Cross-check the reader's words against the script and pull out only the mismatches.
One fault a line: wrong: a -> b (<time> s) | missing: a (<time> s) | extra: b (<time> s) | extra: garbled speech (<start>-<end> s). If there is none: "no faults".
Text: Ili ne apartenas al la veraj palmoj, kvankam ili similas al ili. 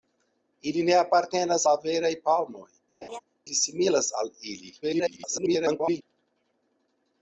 missing: al (1.6 s)
missing: kvankam (2.6 s)
extra: garbled speech (4.8-6.0 s)